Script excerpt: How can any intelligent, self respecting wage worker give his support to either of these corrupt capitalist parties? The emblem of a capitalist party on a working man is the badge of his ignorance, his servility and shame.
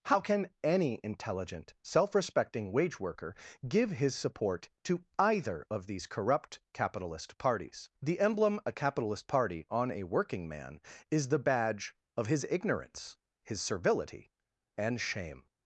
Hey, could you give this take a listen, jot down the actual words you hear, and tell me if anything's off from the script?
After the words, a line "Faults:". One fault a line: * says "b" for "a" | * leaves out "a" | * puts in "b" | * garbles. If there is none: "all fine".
How can any intelligent, self respecting wage worker give his support to either of these corrupt capitalist parties? The emblem a capitalist party on a working man is the badge of his ignorance, his servility and shame.
Faults:
* leaves out "of"